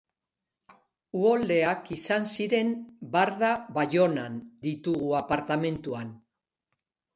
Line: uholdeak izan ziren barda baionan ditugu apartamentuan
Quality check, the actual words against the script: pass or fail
pass